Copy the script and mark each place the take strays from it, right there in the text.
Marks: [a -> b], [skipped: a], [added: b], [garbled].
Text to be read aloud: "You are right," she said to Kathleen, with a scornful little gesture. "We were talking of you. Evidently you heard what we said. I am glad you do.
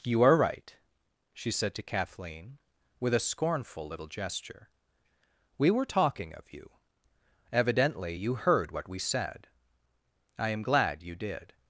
"You are right," she said to Kathleen, with a scornful little gesture. "We were talking of you. Evidently you heard what we said. I am glad you [do. -> did]